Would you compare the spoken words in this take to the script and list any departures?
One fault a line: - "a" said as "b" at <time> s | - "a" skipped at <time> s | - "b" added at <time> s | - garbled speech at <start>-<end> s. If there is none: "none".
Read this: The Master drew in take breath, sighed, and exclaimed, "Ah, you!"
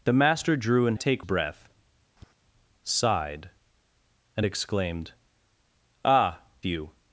none